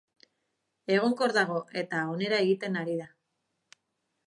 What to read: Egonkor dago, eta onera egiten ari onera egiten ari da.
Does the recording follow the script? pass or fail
fail